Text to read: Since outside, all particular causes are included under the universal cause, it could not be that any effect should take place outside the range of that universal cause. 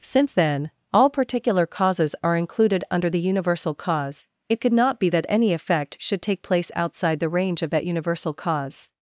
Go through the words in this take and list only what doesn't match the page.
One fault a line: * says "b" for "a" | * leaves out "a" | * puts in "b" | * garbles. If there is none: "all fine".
* says "then" for "outside"